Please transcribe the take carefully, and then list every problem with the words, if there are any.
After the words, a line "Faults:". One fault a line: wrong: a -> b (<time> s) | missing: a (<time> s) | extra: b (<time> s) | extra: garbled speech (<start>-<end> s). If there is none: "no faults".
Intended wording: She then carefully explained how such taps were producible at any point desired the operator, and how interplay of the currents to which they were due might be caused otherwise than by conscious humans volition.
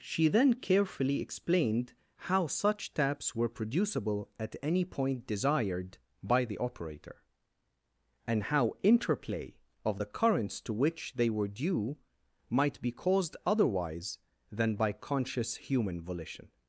She then carefully explained how such taps were producible at any point desired by the operator, and how interplay of the currents to which they were due might be caused otherwise than by conscious human volition.
Faults:
extra: by (6.2 s)
wrong: humans -> human (15.5 s)